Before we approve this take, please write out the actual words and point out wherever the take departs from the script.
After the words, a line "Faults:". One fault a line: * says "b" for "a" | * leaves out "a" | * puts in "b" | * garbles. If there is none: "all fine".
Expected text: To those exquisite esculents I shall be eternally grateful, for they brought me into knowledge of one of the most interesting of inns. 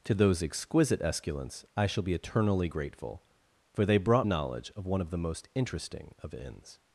To those exquisite esculents I shall be eternally grateful, for they brought knowledge of one of the most interesting of inns.
Faults:
* leaves out "me into"